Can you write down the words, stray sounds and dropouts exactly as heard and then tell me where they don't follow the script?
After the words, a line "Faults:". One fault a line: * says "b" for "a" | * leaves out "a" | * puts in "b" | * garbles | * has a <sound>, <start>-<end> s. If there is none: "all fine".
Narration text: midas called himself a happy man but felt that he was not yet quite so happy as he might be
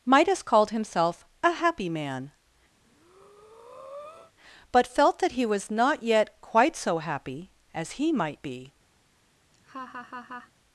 midas called himself a happy man but felt that he was not yet quite so happy as he might be
Faults:
* has a breath, 2.8-4.3 s
* has a laugh, 9.5-10.5 s